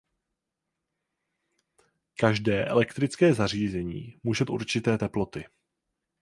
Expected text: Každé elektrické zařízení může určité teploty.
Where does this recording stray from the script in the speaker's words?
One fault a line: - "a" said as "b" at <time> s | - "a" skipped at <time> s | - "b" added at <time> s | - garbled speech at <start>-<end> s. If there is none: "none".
none